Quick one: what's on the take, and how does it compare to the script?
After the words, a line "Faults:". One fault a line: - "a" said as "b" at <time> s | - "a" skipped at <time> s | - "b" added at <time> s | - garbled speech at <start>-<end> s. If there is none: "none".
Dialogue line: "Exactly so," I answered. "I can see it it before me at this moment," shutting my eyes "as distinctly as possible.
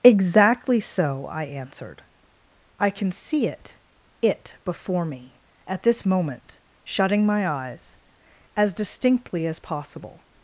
"Exactly so," I answered. "I can see it it before me at this moment," shutting my eyes "as distinctly as possible.
Faults:
none